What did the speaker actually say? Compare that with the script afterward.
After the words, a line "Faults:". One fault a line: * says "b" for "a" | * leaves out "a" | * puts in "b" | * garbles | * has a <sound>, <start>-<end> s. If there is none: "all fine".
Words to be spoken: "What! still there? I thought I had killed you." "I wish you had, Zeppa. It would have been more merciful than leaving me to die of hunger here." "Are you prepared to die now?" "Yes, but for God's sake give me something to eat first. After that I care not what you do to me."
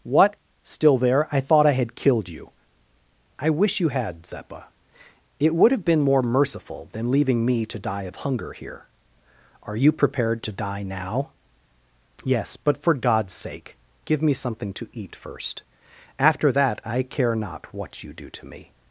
"What! still there? I thought I had killed you." "I wish you had, Zeppa. It would have been more merciful than leaving me to die of hunger here." "Are you prepared to die now?" "Yes, but for God's sake give me something to eat first. After that I care not what you do to me."
Faults:
all fine